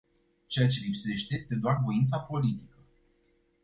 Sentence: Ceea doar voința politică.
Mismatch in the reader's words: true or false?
true